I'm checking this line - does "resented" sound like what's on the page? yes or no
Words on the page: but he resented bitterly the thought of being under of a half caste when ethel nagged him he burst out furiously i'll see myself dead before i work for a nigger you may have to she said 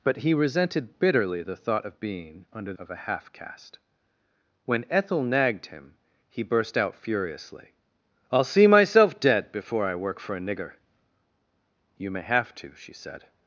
yes